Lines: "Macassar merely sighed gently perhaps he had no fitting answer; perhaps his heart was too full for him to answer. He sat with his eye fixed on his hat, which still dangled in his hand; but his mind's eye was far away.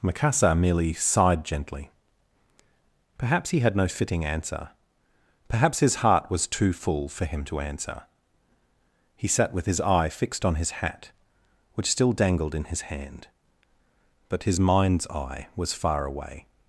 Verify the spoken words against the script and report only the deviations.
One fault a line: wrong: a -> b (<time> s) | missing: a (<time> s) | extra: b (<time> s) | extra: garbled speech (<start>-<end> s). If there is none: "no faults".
no faults